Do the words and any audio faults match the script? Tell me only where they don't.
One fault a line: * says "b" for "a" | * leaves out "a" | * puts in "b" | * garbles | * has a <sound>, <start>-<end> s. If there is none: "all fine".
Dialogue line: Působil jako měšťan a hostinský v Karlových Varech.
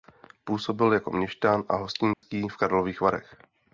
* has a dropout, 2.1-2.2 s